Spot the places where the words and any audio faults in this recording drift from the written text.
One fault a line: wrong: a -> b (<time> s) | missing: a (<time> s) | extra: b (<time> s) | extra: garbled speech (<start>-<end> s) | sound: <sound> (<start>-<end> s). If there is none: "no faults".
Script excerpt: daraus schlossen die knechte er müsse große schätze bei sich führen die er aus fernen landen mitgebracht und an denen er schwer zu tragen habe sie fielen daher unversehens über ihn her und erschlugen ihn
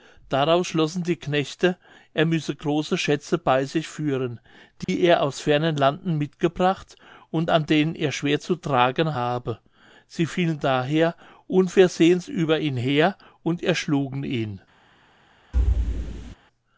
sound: dropout (4.8-4.9 s)
sound: thud (15.5-16.4 s)